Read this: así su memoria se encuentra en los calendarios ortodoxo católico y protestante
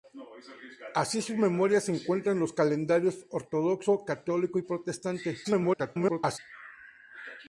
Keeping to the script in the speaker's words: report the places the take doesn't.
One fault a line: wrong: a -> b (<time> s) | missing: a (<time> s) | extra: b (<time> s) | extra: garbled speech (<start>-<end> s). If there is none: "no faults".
extra: garbled speech (5.4-6.4 s)